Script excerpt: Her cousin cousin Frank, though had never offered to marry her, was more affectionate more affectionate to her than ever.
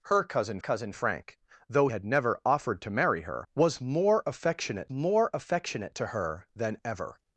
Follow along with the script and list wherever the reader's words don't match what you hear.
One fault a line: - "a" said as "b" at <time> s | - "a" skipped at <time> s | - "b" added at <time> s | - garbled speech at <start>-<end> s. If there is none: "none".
none